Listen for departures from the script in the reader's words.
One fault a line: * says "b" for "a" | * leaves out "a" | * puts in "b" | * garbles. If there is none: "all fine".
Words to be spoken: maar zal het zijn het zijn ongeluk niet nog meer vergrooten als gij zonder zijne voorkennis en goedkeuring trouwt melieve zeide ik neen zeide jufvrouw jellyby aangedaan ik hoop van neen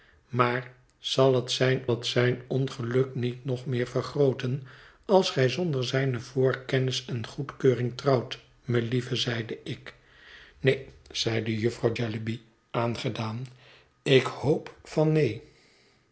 all fine